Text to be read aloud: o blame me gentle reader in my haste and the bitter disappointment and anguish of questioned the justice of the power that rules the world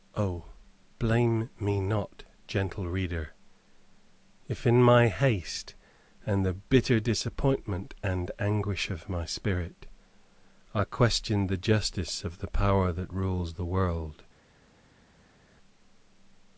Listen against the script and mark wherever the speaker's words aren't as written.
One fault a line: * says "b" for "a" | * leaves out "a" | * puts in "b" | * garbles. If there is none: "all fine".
* puts in "not"
* puts in "if"
* puts in "my spirit i"